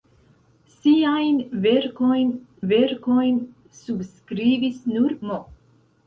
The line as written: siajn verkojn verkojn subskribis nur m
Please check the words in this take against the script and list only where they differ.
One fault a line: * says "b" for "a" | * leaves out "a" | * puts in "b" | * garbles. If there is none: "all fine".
all fine